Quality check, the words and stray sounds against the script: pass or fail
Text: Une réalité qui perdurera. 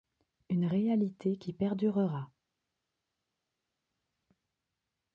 pass